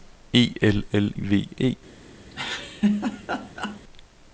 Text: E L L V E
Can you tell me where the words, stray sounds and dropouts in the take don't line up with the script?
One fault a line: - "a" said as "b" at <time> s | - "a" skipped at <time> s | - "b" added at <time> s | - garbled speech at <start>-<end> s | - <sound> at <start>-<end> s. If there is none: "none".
- laugh at 2.3-3.8 s